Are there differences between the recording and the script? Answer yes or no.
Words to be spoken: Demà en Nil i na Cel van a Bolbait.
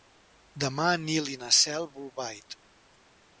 yes